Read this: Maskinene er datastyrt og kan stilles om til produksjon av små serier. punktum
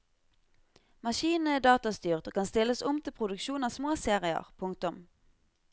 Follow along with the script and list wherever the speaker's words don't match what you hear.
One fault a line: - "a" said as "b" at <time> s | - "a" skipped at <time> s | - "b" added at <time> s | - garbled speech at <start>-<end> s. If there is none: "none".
none